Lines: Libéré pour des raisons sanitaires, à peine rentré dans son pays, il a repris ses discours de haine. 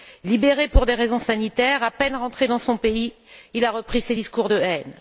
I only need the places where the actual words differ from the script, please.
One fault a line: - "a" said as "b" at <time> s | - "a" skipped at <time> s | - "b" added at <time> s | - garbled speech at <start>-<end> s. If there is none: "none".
none